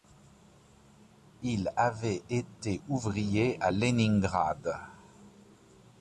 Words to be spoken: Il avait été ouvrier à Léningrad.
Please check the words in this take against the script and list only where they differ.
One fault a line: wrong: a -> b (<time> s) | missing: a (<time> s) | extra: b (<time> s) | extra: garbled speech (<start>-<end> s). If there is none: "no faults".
no faults